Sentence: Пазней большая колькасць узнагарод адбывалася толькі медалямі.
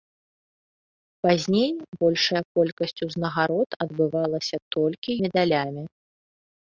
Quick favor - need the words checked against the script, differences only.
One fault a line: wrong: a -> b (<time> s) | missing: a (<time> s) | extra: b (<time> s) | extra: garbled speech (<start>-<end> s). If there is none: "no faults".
no faults